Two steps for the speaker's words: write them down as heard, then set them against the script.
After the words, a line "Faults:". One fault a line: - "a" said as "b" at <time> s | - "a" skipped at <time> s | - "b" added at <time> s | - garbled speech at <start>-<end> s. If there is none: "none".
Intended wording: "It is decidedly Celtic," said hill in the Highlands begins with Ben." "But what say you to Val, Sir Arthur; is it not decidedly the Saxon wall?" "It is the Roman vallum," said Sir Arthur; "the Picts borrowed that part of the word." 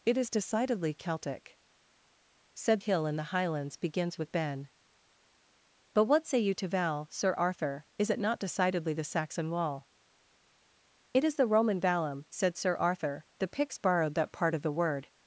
"It is decidedly Celtic," said hill in the Highlands begins with Ben." "But what say you to Val, Sir Arthur; is it not decidedly the Saxon wall?" "It is the Roman vallum," said Sir Arthur; "the Picts borrowed that part of the word."
Faults:
none